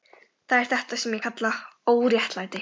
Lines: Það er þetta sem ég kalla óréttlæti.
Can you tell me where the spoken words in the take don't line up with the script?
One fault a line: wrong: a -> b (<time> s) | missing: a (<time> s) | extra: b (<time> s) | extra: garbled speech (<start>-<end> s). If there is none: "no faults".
no faults